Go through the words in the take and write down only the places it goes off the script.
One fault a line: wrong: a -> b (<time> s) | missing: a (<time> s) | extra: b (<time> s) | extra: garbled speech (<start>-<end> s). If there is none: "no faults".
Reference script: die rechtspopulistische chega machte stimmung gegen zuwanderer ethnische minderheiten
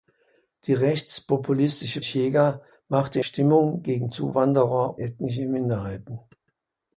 no faults